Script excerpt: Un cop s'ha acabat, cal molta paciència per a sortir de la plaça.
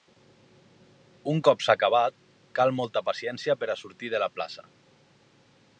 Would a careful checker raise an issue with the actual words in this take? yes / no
no